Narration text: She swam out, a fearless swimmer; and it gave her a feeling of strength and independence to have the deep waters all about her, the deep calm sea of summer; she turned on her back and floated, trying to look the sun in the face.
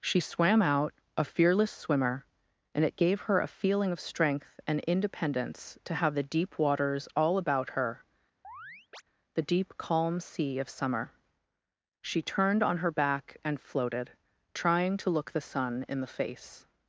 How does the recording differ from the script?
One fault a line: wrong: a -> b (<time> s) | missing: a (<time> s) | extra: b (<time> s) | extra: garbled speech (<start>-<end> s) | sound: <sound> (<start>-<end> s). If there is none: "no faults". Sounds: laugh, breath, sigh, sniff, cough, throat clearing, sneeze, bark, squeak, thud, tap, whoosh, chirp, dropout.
sound: chirp (8.4-9.0 s)